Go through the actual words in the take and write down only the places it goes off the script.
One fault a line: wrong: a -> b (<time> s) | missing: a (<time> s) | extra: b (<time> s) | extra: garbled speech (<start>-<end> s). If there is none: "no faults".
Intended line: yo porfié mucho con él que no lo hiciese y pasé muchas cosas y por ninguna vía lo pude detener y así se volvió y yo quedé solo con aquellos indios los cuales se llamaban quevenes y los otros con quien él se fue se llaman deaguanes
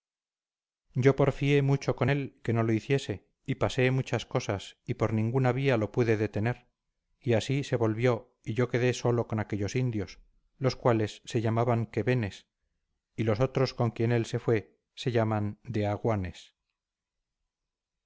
no faults